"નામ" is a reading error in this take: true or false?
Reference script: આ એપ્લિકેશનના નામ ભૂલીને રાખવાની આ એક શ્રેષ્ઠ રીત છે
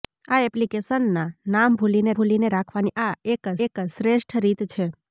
false